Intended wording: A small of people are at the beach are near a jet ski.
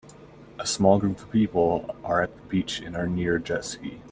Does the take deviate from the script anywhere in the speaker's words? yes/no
yes